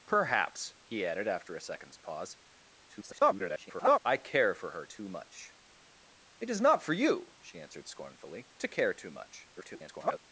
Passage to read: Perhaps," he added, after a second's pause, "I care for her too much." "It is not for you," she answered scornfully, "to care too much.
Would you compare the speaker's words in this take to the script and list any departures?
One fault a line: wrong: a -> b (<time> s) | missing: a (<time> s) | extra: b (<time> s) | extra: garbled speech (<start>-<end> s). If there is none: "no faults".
extra: garbled speech (2.9-4.0 s)
extra: garbled speech (9.6-10.2 s)